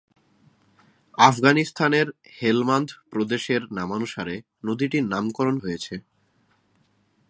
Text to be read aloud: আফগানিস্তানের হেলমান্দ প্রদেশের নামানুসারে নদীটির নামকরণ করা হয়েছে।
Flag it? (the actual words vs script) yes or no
yes